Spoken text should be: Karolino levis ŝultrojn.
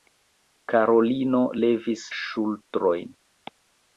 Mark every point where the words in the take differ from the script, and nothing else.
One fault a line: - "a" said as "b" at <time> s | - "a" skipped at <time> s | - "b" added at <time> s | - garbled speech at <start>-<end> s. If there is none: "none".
none